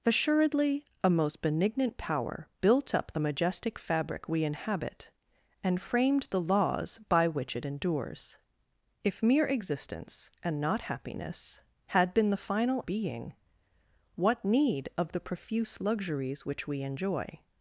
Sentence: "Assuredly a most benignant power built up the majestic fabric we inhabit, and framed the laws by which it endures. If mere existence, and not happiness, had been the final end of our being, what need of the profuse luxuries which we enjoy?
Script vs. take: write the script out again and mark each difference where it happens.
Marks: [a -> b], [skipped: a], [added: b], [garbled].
"Assuredly a most benignant power built up the majestic fabric we inhabit, and framed the laws by which it endures. If mere existence, and not happiness, had been the final [skipped: end of our] being, what need of the profuse luxuries which we enjoy?